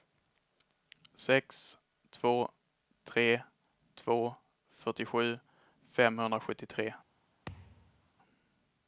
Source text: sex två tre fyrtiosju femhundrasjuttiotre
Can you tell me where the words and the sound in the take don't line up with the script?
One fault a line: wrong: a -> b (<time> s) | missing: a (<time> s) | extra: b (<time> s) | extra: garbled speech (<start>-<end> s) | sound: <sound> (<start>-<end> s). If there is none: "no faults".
extra: två (3.9 s)
sound: thud (7.5-8.1 s)